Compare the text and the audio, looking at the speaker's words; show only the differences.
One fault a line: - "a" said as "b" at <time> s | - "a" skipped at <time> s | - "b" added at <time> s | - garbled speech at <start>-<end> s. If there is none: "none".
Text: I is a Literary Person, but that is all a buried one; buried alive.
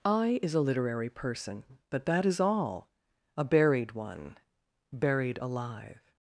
none